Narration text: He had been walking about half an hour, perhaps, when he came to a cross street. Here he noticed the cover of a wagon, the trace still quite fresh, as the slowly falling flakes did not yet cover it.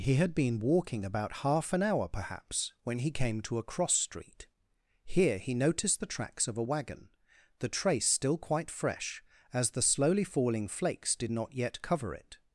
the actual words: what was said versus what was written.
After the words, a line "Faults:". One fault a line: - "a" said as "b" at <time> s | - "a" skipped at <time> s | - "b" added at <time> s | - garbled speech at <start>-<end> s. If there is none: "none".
He had been walking about half an hour, perhaps, when he came to a cross street. Here he noticed the tracks of a wagon, the trace still quite fresh, as the slowly falling flakes did not yet cover it.
Faults:
- "cover" said as "tracks" at 6.1 s